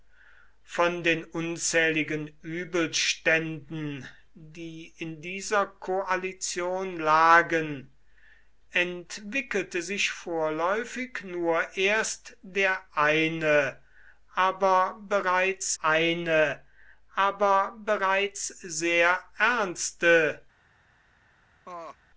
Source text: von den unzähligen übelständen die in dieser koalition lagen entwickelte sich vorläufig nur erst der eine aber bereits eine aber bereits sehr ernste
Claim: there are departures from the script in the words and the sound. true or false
true